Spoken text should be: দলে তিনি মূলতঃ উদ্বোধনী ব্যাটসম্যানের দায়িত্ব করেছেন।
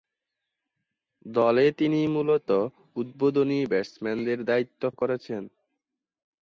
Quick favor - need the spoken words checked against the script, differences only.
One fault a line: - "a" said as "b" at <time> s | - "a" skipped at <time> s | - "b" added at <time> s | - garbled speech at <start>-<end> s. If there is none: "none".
none